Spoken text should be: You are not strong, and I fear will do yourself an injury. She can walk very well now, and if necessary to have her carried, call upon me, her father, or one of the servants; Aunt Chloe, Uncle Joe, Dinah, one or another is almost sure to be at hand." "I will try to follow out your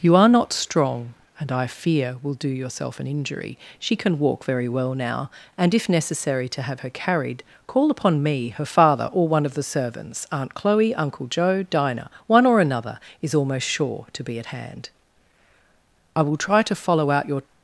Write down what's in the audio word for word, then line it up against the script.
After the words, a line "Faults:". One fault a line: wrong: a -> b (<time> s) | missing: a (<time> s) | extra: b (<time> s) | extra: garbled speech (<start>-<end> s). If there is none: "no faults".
You are not strong, and I fear will do yourself an injury. She can walk very well now, and if necessary to have her carried, call upon me, her father, or one of the servants; Aunt Chloe, Uncle Joe, Dinah, one or another is almost sure to be at hand." "I will try to follow out your
Faults:
no faults